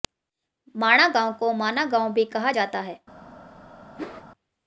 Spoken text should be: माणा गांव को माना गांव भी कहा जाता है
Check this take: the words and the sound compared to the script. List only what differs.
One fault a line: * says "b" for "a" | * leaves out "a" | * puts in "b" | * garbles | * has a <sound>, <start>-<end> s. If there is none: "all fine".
* has a whoosh, 4.0-4.2 s